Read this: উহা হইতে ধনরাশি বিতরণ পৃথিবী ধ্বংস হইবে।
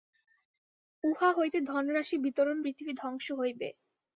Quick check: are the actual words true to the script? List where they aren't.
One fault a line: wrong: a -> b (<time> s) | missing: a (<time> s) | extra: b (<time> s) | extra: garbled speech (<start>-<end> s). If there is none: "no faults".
no faults